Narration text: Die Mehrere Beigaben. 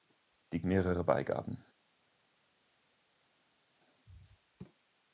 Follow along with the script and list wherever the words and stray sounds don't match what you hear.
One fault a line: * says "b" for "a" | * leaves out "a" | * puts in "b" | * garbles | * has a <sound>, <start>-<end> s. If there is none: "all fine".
all fine